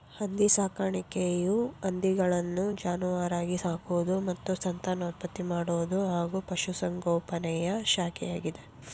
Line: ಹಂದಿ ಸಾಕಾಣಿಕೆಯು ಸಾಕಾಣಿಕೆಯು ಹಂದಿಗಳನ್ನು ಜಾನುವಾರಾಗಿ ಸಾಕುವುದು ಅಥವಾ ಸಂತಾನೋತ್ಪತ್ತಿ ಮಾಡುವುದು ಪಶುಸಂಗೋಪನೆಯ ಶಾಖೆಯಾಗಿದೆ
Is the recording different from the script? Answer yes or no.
yes